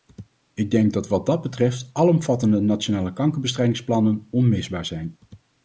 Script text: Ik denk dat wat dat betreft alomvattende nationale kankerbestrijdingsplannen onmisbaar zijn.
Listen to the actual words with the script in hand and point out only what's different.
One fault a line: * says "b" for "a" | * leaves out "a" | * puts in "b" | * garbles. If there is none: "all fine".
all fine